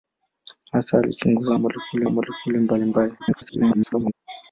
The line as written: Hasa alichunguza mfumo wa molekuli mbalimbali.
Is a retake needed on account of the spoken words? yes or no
yes